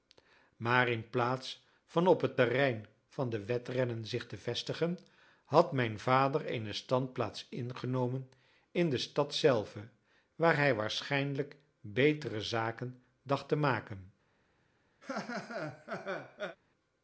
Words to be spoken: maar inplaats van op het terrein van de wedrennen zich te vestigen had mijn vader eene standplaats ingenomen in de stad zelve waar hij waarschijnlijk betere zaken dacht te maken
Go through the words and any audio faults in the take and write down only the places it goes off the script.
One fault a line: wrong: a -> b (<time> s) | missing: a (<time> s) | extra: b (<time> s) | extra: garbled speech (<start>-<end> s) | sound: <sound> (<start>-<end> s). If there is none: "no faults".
sound: laugh (15.0-16.6 s)